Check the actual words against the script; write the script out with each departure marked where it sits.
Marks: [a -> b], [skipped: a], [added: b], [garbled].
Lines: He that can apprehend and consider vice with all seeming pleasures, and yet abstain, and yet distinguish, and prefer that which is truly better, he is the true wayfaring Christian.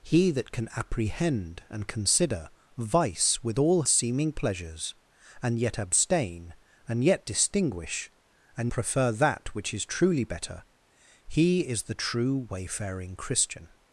He that can apprehend and consider vice with all seeming pleasures, and yet abstain, and yet distinguish, and prefer that which is truly better, he is the true wayfaring Christian.